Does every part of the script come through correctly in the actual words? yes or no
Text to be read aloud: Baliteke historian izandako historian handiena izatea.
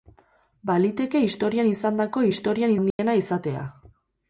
yes